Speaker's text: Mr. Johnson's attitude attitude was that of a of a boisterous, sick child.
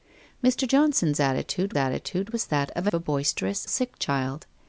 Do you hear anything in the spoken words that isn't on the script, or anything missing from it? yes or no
no